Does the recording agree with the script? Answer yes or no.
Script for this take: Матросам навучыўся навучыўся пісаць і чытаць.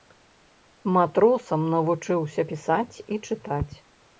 no